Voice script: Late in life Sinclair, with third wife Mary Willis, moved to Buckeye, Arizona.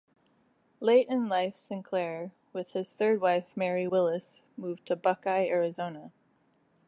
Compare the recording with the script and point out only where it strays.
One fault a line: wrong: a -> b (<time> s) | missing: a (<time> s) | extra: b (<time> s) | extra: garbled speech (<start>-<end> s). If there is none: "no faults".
extra: his (2.7 s)